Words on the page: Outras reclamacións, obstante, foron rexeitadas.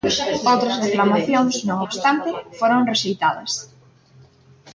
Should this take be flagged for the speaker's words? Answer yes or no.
yes